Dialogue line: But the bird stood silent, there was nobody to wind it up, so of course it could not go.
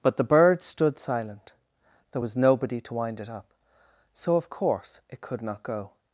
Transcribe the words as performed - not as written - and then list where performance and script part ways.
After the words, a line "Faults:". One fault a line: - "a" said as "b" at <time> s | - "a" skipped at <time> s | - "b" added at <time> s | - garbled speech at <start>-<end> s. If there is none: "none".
But the bird stood silent, there was nobody to wind it up, so of course it could not go.
Faults:
none